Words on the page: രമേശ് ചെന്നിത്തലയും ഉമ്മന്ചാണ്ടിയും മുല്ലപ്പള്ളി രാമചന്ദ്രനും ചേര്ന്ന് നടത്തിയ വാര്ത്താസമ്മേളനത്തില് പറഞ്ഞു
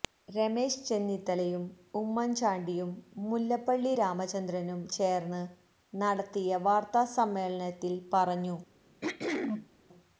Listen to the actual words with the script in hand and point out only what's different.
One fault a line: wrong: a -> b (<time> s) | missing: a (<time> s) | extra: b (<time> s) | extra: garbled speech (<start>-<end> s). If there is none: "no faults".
no faults